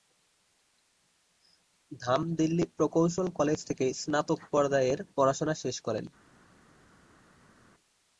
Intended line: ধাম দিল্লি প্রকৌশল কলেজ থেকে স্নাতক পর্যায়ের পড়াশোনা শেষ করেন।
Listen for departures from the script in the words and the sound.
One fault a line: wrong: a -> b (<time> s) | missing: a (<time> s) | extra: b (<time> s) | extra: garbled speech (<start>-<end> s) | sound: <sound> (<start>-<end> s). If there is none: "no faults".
no faults